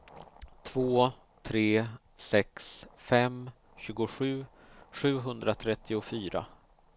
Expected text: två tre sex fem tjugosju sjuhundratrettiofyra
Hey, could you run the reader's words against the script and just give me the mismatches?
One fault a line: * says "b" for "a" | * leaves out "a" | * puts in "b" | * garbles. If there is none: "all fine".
all fine